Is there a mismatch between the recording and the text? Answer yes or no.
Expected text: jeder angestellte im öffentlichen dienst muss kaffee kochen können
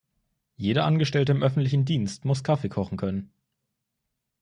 no